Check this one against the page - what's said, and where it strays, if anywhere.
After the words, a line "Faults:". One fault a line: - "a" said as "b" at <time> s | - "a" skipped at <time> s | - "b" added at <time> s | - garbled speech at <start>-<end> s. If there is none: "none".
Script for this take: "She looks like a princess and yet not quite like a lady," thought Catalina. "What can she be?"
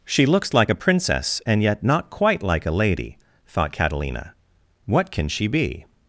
"She looks like a princess and yet not quite like a lady," thought Catalina. "What can she be?"
Faults:
none